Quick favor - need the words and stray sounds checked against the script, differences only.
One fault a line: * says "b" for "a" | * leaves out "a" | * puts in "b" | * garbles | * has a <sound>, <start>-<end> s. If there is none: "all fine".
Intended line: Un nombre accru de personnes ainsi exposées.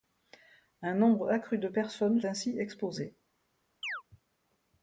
* has a chirp, 3.8-4.0 s